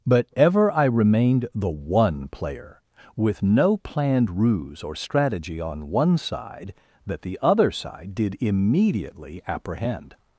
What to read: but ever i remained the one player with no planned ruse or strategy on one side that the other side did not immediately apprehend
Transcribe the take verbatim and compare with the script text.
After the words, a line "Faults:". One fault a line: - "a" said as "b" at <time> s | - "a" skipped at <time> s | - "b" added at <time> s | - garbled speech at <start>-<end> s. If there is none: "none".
but ever i remained the one player with no planned ruse or strategy on one side that the other side did immediately apprehend
Faults:
- "not" skipped at 8.4 s